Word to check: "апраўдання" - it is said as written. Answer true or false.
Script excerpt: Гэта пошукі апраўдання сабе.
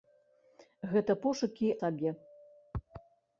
false